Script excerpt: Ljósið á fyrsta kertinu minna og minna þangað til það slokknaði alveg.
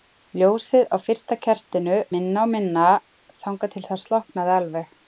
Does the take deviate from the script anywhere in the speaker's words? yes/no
no